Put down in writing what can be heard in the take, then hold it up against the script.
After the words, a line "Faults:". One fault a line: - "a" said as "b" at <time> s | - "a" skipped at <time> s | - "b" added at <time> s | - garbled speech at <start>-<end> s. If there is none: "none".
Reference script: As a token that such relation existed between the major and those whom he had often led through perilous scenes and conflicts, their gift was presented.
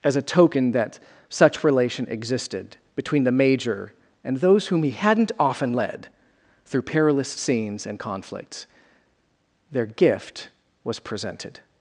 As a token that such relation existed between the major and those whom he hadn't often led through perilous scenes and conflicts, their gift was presented.
Faults:
- "had" said as "hadn't" at 4.9 s